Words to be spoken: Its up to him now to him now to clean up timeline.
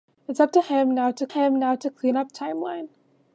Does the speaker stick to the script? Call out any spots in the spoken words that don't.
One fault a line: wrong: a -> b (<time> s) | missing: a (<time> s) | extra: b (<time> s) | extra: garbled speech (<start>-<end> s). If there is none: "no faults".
no faults